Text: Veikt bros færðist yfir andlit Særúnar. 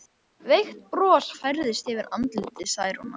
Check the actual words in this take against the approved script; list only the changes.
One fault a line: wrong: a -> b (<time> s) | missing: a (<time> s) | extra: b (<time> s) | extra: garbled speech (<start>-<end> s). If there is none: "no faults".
no faults